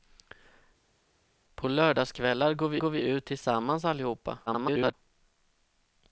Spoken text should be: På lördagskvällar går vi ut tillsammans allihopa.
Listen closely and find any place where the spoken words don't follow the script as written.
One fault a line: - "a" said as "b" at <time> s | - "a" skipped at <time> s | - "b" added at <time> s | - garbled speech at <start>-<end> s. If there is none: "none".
- "går vi" added at 2.8 s
- garbled speech at 4.5-4.9 s